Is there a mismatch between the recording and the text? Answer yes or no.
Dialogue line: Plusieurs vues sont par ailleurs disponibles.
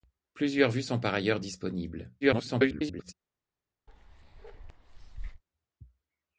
yes